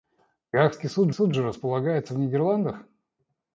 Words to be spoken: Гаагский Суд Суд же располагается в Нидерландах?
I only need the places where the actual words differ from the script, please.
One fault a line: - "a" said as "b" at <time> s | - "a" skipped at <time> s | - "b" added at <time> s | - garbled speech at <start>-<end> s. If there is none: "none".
none